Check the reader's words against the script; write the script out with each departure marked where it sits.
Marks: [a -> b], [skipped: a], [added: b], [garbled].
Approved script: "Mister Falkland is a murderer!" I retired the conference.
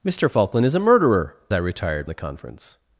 "Mister Falkland is a murderer!" I retired the conference.